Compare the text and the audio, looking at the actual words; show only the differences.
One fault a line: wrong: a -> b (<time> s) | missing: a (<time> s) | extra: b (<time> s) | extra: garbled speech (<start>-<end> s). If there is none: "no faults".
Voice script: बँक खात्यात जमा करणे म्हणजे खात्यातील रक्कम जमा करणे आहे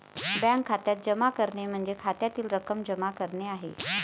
no faults